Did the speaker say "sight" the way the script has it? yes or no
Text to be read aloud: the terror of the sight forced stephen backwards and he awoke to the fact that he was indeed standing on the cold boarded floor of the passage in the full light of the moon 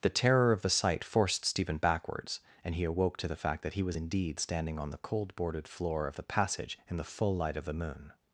yes